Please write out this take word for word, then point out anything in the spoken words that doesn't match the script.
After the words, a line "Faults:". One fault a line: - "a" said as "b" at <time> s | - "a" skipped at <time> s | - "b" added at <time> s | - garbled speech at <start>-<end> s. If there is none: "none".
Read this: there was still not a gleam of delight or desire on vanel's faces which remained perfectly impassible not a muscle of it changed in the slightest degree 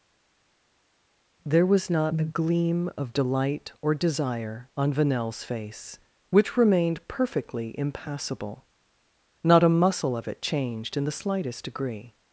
there was not a gleam of delight or desire on vanel's face which remained perfectly impassible not a muscle of it changed in the slightest degree
Faults:
- "still" skipped at 1.9 s
- "faces" said as "face" at 5.4 s